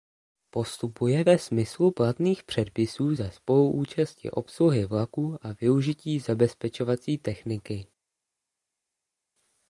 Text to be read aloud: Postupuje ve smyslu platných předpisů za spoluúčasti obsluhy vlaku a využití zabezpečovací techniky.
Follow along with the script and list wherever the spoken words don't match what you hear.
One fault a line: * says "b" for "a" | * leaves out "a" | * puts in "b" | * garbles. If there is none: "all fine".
all fine